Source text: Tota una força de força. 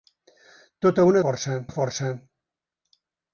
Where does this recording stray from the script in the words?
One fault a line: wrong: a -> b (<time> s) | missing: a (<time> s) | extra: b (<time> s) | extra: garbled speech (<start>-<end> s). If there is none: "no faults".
no faults